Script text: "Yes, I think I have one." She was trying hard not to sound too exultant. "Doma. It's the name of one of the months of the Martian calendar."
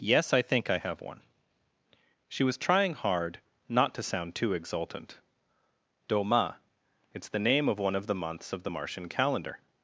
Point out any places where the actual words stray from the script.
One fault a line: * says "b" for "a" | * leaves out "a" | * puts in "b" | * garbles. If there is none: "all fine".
all fine